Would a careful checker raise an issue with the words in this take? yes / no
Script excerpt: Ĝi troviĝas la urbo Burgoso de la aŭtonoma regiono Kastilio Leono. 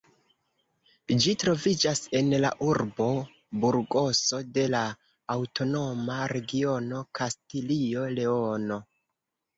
yes